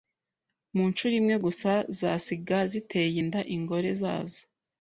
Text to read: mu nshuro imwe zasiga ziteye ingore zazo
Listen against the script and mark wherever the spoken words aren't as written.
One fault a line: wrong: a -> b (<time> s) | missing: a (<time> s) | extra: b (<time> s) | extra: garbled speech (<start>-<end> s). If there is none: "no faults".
extra: gusa (1.4 s)
extra: inda (3.2 s)